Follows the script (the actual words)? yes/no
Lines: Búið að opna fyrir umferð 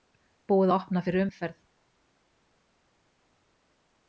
yes